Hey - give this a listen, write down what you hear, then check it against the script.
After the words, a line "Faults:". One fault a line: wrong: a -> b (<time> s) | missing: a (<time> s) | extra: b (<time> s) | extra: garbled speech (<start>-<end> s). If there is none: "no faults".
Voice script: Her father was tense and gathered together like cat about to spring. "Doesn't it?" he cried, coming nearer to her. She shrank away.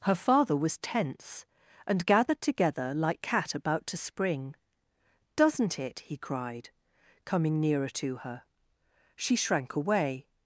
Her father was tense and gathered together like cat about to spring. "Doesn't it?" he cried, coming nearer to her. She shrank away.
Faults:
no faults